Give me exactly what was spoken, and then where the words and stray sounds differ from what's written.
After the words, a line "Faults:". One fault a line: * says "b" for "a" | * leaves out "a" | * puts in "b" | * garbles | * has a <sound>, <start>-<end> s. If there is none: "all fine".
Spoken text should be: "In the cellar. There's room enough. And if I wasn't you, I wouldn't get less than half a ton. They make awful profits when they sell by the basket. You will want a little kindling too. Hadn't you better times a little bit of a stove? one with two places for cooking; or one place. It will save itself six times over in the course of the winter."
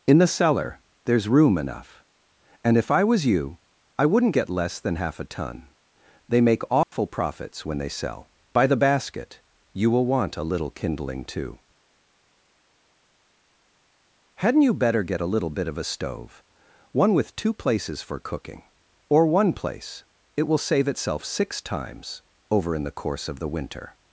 "In the cellar. There's room enough. And if I was you, I wouldn't get less than half a ton. They make awful profits when they sell by the basket. You will want a little kindling too. Hadn't you better get a little bit of a stove? one with two places for cooking; or one place. It will save itself six times over in the course of the winter."
Faults:
* says "was" for "wasn't"
* has a dropout, 6.8-6.9 s
* says "get" for "times"